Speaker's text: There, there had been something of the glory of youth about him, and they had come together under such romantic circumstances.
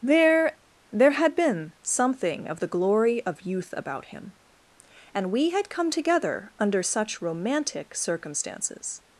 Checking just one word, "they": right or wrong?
wrong